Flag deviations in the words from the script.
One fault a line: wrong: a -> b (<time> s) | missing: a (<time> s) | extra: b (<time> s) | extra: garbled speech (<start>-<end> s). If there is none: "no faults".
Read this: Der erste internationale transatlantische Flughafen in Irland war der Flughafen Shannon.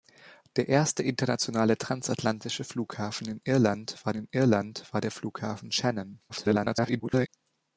extra: in Irland war (4.1 s)
extra: garbled speech (6.3-7.3 s)